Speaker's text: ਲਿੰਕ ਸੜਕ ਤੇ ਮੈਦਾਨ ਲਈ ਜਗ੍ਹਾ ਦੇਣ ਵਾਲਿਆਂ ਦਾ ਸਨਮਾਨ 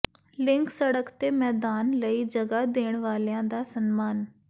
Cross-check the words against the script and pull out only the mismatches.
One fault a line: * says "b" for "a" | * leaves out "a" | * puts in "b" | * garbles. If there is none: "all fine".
all fine